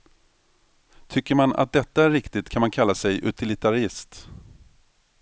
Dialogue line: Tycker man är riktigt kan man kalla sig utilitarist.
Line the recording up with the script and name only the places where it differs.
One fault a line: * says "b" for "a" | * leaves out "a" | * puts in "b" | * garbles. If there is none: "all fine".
* puts in "att detta"